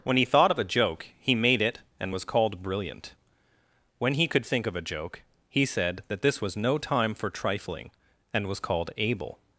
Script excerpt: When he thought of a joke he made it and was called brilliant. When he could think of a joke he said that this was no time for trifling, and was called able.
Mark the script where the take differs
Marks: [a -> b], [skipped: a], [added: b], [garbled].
When he thought of a joke he made it and was called brilliant. When he could think of a joke he said that this was no time for trifling, and was called able.